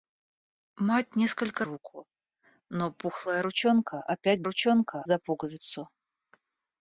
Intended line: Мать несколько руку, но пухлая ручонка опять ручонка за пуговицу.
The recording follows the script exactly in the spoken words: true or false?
true